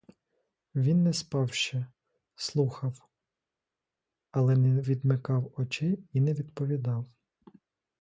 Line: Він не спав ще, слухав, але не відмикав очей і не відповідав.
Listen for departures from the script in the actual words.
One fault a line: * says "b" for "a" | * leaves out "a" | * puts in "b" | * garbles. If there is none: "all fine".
all fine